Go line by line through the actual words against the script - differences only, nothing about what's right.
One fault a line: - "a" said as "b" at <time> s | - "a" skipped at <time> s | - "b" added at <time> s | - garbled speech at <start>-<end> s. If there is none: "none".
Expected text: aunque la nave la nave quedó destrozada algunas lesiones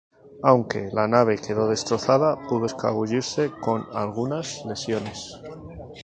- "la nave quedó destrozada" said as "quedó destrozada pudo escabullirse con" at 1.4 s